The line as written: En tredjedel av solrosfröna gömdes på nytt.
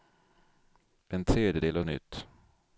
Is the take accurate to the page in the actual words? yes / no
no